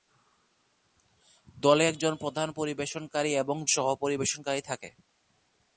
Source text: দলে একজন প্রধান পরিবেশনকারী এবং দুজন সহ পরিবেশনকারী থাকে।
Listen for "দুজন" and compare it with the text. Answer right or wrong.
wrong